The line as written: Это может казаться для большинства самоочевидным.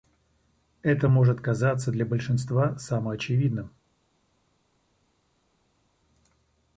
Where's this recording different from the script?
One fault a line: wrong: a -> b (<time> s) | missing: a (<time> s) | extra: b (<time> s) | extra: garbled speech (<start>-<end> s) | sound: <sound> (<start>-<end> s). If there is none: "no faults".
no faults